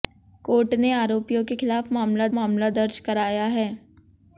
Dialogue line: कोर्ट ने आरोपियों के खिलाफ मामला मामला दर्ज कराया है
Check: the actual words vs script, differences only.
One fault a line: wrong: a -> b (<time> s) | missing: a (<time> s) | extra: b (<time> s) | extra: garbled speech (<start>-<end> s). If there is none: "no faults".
no faults